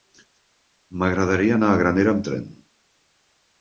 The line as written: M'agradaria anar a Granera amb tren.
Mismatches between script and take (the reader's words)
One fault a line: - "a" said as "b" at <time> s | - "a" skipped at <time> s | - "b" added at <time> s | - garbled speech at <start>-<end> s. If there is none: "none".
none